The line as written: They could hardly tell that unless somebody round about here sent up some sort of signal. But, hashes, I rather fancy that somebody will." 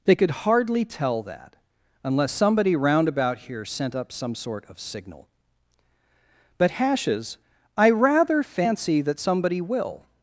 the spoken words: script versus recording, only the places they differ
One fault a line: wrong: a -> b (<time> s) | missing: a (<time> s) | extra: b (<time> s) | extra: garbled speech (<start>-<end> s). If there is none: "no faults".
no faults